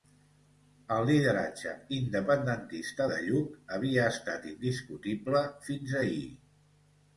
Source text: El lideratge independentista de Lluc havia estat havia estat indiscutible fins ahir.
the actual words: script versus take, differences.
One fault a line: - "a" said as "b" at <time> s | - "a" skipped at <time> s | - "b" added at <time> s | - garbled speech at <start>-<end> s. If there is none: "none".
- "havia estat" skipped at 4.5 s